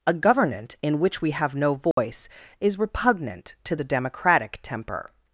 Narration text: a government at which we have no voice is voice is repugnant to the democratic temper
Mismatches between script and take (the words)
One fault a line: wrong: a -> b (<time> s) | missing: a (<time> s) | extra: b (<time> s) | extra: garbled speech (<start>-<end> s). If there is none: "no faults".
wrong: at -> in (0.8 s)
missing: voice is (2.8 s)